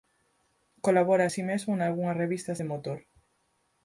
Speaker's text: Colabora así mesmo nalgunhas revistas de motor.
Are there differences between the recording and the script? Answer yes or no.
no